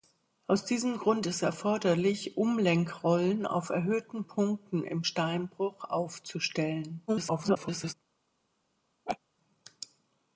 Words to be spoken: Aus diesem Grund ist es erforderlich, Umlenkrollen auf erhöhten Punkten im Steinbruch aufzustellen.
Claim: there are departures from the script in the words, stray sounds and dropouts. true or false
true